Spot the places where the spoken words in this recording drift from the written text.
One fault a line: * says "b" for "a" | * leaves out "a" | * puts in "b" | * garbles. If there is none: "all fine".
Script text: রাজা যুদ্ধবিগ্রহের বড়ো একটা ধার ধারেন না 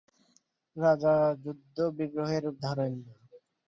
* leaves out "বড়ো একটা ধার"